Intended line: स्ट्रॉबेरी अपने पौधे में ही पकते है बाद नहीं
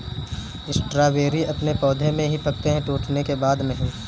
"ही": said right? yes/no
yes